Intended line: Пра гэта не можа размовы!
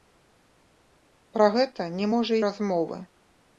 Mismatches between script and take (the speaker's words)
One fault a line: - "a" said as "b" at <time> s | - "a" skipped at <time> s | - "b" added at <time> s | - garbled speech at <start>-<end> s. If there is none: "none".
none